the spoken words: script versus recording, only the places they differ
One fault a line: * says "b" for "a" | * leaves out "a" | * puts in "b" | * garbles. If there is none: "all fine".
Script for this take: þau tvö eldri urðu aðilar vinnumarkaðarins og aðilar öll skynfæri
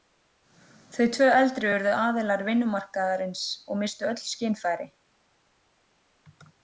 * says "misstu" for "aðilar"